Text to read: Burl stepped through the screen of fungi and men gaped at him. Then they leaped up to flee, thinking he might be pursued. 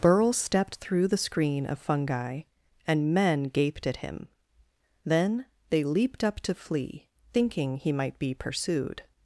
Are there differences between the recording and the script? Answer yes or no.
no